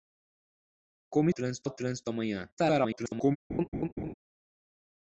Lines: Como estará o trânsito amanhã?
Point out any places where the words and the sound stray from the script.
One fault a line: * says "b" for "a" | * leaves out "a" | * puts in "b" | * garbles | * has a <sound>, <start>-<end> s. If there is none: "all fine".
* says "trânsito" for "estará"
* garbles
* has a laugh, 3.5-4.1 s